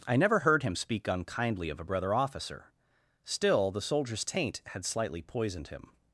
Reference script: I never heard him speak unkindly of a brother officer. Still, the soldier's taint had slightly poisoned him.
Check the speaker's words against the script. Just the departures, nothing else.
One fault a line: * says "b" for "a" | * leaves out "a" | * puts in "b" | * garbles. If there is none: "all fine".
all fine